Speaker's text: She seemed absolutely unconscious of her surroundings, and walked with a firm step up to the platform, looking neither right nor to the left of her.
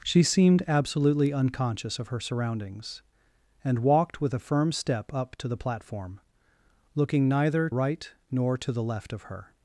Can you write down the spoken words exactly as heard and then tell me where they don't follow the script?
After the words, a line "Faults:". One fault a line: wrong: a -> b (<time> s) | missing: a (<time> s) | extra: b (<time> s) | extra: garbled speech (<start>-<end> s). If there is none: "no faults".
She seemed absolutely unconscious of her surroundings, and walked with a firm step up to the platform, looking neither right nor to the left of her.
Faults:
no faults